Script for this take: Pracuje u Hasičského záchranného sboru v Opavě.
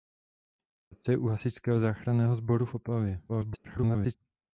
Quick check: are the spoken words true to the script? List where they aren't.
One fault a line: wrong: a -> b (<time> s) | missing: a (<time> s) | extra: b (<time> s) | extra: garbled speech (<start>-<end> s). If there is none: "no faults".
extra: garbled speech (3.3-4.2 s)